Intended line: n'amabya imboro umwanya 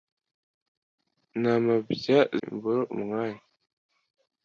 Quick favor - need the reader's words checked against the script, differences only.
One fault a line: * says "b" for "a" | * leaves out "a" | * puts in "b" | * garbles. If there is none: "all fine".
all fine